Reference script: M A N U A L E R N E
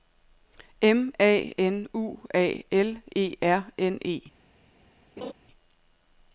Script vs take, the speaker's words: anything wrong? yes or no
no